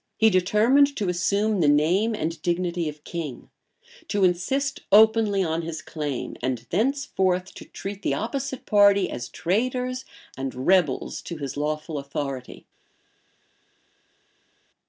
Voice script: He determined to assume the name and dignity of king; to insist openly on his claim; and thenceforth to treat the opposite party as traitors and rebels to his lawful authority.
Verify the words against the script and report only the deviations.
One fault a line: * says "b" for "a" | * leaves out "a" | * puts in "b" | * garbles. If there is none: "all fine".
all fine